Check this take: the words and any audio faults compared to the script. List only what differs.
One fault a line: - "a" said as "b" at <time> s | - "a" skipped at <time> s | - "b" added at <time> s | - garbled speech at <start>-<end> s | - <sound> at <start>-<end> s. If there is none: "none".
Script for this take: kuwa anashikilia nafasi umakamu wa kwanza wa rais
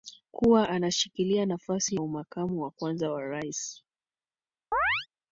- chirp at 4.7-5.1 s